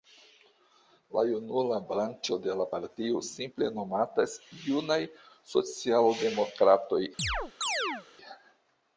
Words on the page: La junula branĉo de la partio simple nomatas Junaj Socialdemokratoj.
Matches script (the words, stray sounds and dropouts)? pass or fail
fail